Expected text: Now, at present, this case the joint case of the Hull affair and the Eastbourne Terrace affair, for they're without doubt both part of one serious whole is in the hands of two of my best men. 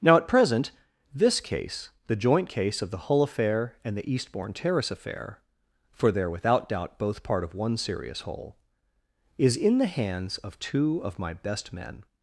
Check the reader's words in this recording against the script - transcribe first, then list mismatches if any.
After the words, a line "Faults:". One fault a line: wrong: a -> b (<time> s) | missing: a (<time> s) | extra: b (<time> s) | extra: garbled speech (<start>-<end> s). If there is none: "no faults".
Now, at present, this case the joint case of the Hull affair and the Eastbourne Terrace affair, for they're without doubt both part of one serious whole is in the hands of two of my best men.
Faults:
no faults